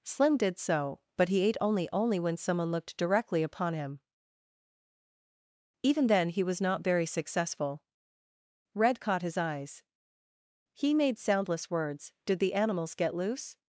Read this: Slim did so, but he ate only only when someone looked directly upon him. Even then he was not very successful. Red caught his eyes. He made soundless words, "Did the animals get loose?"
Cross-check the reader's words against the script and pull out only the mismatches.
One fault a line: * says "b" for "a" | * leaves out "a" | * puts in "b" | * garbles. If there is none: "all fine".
all fine